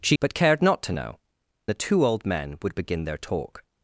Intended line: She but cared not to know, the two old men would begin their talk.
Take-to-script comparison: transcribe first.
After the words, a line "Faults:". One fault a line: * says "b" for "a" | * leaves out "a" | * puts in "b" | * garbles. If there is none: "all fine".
She but cared not to know, the two old men would begin their talk.
Faults:
all fine